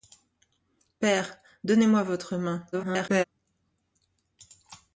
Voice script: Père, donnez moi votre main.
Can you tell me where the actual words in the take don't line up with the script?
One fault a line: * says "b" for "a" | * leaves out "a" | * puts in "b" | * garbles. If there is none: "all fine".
* garbles